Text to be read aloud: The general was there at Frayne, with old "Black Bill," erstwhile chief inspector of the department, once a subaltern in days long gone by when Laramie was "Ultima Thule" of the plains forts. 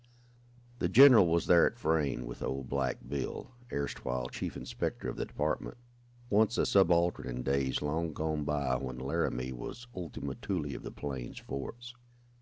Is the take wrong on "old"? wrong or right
right